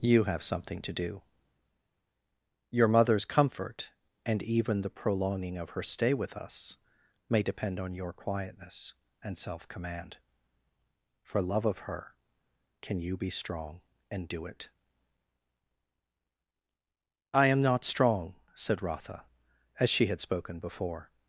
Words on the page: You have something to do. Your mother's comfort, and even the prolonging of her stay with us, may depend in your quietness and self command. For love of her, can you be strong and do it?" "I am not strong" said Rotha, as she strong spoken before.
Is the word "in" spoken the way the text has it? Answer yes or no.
no